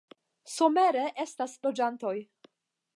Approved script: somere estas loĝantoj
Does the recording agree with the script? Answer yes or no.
yes